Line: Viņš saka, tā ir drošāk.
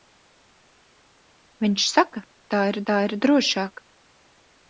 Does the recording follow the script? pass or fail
fail